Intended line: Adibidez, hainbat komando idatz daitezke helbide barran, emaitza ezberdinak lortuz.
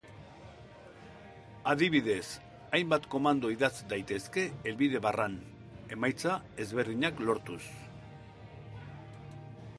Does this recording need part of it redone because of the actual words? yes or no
no